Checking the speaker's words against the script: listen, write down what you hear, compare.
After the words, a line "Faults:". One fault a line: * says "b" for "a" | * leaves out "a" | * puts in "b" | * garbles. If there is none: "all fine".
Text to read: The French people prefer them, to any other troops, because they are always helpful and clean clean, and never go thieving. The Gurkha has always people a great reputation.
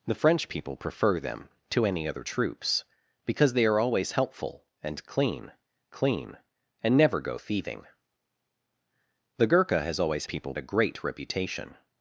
The French people prefer them, to any other troops, because they are always helpful and clean clean, and never go thieving. The Gurkha has always people a great reputation.
Faults:
all fine